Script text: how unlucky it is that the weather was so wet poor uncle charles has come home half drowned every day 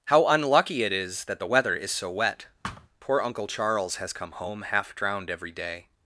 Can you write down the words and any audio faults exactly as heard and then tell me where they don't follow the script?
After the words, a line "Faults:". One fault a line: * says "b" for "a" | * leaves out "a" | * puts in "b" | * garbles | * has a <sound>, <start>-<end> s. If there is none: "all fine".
how unlucky it is that the weather is so wet poor uncle charles has come home half drowned every day
Faults:
* says "is" for "was"
* has a thud, 2.6-2.9 s